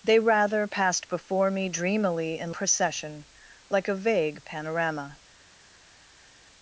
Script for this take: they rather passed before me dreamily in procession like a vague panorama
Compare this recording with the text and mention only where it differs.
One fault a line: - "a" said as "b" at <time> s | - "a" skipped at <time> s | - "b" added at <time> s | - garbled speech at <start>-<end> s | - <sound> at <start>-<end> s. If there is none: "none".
none